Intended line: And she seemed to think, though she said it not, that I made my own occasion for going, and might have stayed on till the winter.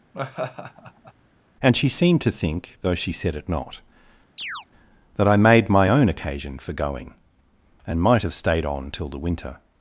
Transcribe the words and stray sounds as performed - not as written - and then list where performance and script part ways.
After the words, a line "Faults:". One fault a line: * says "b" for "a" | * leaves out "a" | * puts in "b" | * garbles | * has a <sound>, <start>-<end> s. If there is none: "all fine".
And she seemed to think, though she said it not, that I made my own occasion for going, and might have stayed on till the winter.
Faults:
* has a laugh, 0.1-1.1 s
* has a chirp, 4.4-4.7 s